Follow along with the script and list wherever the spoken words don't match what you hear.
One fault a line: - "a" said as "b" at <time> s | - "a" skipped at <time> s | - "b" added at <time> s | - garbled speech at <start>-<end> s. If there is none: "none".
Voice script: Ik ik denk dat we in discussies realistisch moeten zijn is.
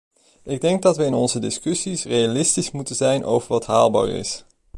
- "ik" skipped at 0.6 s
- "onze" added at 1.1 s
- "over wat haalbaar" added at 3.2 s